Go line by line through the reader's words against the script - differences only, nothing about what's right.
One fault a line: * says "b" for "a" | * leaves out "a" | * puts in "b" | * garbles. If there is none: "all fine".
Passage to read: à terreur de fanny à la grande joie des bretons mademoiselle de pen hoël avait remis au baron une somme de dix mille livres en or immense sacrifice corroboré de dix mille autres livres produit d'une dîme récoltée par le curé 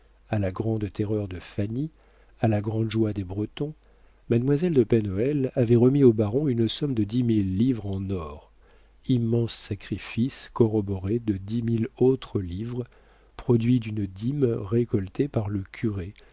* puts in "la grande"